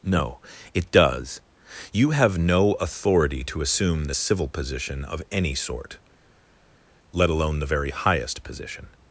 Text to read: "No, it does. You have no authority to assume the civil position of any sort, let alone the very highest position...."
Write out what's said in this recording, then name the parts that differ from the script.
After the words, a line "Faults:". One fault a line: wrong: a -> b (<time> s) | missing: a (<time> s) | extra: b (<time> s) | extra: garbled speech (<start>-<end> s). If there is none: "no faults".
"No, it does. You have no authority to assume the civil position of any sort, let alone the very highest position...."
Faults:
no faults